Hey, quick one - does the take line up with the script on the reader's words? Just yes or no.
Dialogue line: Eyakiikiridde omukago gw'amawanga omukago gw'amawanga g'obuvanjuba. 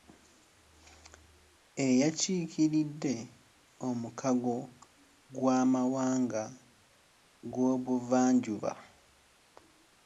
no